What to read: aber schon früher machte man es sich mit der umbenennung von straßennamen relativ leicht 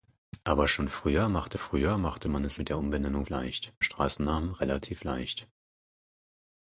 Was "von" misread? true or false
true